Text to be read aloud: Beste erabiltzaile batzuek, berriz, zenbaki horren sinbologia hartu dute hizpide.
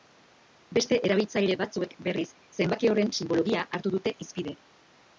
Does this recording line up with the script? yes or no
yes